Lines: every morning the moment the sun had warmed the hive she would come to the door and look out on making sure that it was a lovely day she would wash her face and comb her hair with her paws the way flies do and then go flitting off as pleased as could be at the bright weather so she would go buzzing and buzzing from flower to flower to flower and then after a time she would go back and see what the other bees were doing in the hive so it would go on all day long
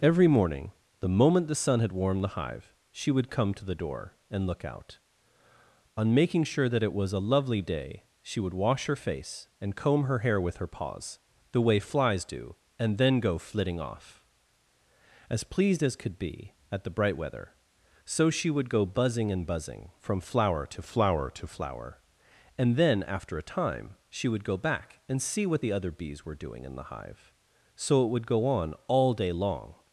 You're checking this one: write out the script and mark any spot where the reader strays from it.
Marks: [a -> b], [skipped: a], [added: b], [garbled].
every morning the moment the sun had warmed the hive she would come to the door and look out on making sure that it was a lovely day she would wash her face and comb her hair with her paws the way flies do and then go flitting off as pleased as could be at the bright weather so she would go buzzing and buzzing from flower to flower to flower and then after a time she would go back and see what the other bees were doing in the hive so it would go on all day long